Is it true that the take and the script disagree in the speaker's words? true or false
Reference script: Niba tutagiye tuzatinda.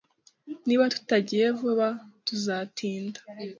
true